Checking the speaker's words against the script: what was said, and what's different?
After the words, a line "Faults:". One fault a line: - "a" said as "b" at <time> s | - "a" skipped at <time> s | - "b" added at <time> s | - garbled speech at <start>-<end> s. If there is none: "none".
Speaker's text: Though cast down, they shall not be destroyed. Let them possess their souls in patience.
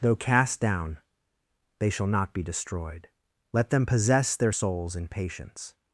Though cast down, they shall not be destroyed. Let them possess their souls in patience.
Faults:
none